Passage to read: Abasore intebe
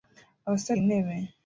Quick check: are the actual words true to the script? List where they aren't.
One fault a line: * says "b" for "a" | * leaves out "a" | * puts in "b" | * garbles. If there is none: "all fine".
all fine